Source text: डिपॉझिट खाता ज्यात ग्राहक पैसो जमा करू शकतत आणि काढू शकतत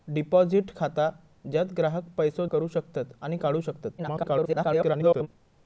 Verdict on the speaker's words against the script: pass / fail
fail